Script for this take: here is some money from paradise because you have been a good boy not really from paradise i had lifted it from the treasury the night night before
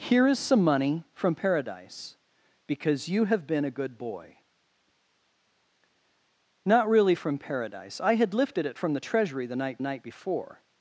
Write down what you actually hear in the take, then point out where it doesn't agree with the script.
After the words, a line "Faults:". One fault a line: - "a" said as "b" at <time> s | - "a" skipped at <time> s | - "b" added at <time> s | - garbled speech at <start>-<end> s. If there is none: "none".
here is some money from paradise because you have been a good boy not really from paradise i had lifted it from the treasury the night night before
Faults:
none